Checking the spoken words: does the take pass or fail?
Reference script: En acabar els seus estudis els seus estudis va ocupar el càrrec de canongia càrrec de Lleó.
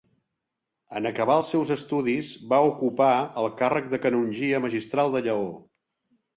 fail